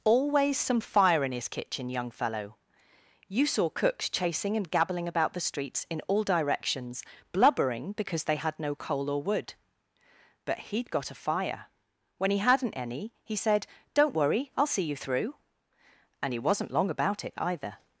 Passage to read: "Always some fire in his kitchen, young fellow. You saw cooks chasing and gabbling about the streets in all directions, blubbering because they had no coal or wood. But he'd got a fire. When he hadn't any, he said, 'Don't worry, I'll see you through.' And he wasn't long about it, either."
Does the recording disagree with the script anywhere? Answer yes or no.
no